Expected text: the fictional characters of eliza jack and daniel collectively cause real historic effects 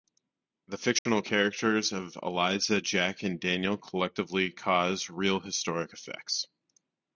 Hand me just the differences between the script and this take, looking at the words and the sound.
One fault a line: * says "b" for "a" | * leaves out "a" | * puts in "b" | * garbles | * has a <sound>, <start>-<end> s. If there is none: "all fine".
* has a dropout, 1.0-1.1 s